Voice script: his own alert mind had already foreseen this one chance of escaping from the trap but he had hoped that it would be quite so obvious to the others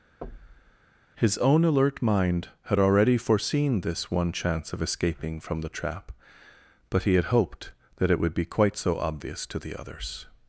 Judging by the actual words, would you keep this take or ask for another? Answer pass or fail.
pass